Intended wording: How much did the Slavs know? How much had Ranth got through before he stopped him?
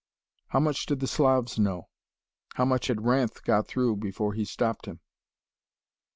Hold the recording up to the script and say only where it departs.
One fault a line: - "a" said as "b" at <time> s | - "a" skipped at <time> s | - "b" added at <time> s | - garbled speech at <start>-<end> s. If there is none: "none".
none